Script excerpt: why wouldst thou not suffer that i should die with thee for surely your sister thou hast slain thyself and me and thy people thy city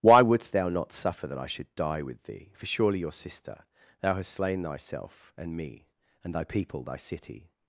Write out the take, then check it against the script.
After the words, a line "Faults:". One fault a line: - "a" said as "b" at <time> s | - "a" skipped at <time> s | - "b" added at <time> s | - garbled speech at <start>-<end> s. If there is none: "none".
why wouldst thou not suffer that i should die with thee for surely your sister thou hast slain thyself and me and thy people thy city
Faults:
none